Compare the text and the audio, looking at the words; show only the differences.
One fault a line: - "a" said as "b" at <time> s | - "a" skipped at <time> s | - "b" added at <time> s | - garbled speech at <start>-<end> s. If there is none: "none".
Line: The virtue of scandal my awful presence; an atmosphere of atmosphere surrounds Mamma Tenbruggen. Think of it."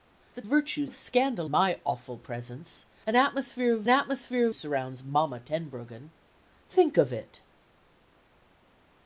none